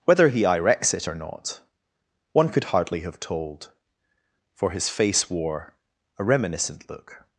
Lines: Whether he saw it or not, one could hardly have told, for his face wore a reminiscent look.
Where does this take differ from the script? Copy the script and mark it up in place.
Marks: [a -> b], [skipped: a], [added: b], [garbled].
Whether he [saw -> irex] it or not, one could hardly have told, for his face wore a reminiscent look.